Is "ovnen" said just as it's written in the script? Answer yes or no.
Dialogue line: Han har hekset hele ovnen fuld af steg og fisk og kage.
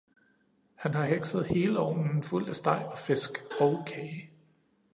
yes